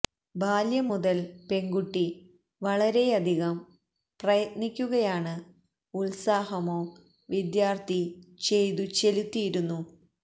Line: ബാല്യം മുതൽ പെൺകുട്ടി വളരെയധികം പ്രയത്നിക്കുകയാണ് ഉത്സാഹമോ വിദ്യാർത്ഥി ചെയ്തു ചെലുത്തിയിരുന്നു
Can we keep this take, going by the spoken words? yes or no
yes